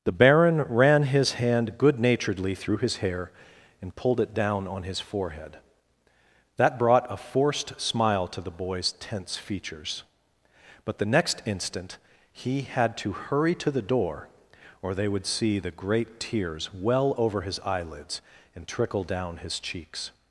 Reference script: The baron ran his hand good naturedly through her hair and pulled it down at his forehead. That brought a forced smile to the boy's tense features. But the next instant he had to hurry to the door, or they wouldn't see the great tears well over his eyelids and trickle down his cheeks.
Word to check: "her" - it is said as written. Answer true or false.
false